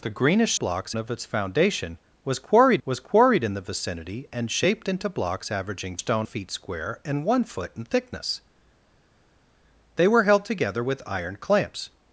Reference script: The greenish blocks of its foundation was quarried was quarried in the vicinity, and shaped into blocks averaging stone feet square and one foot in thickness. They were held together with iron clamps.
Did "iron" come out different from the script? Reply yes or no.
no